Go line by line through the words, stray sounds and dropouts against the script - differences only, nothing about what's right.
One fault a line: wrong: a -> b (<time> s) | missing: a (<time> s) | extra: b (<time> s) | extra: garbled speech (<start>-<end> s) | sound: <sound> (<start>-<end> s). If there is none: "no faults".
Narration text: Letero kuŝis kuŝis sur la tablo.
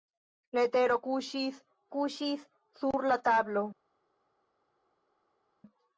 no faults